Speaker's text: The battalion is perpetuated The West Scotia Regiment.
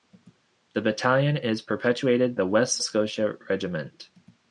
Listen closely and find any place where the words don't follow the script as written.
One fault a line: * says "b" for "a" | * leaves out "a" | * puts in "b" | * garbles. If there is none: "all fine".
all fine